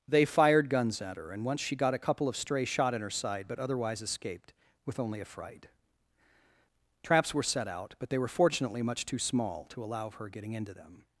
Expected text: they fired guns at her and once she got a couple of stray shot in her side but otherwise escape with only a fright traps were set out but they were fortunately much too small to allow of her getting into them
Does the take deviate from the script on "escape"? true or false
true